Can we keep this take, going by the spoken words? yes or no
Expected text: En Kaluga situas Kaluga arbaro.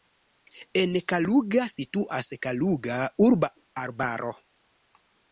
no